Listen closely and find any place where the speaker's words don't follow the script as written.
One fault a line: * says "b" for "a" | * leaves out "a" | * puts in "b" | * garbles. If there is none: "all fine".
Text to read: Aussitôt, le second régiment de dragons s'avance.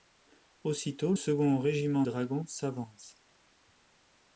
* leaves out "le"
* leaves out "de"